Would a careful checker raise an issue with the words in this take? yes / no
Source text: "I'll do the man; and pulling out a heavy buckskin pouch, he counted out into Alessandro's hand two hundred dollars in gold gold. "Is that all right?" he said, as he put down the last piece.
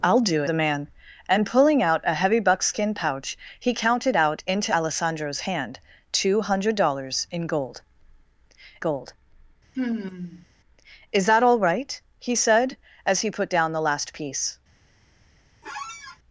no